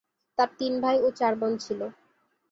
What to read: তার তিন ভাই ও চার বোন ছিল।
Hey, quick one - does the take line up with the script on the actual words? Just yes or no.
yes